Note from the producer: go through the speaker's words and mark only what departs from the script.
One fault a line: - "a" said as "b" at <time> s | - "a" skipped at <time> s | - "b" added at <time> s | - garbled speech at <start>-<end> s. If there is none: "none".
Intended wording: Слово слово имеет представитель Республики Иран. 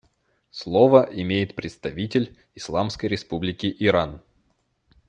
- "слово" skipped at 1.1 s
- "Исламской" added at 2.5 s